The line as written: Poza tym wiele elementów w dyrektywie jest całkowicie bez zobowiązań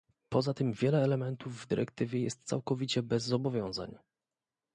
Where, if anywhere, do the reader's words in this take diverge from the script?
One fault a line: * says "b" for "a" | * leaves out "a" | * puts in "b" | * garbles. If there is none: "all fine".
all fine